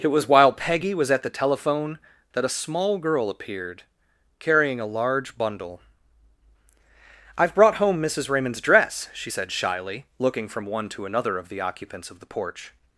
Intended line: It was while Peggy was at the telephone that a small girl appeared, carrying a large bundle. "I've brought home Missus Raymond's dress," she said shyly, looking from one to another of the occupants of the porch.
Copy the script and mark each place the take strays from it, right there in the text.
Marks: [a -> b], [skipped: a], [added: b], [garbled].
It was while Peggy was at the telephone that a small girl appeared, carrying a large bundle. "I've brought home Missus Raymond's dress," she said shyly, looking from one to another of the occupants of the porch.